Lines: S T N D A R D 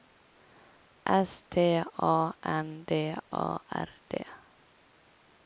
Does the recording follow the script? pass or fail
fail